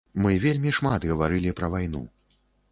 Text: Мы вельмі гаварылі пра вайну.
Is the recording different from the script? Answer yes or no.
yes